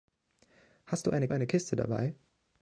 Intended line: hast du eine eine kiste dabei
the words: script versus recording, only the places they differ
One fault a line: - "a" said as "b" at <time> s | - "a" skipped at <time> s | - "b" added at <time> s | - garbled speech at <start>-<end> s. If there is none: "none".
none